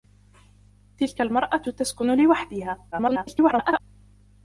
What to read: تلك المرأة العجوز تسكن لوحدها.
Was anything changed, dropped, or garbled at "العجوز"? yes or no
yes